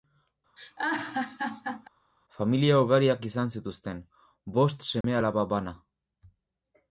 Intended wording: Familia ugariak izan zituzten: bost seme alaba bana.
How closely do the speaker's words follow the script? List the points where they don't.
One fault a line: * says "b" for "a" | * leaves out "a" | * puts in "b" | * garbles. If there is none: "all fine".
all fine